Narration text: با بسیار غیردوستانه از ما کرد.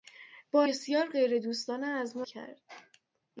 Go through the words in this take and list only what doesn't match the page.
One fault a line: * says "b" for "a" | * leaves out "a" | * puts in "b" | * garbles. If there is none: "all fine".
all fine